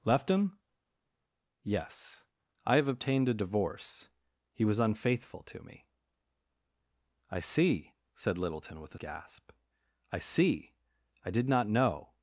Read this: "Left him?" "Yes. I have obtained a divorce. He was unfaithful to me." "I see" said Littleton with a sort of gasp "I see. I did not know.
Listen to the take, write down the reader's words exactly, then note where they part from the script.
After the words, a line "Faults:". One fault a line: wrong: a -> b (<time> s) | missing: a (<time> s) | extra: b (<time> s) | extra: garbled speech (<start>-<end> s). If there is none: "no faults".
"Left him?" "Yes. I have obtained a divorce. He was unfaithful to me." "I see" said Littleton with a gasp "I see. I did not know.
Faults:
missing: sort of (9.0 s)